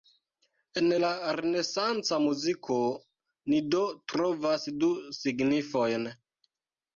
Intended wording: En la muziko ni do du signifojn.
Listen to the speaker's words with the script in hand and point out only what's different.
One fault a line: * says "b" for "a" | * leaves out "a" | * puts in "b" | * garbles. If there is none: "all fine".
* puts in "renesanca"
* puts in "trovas"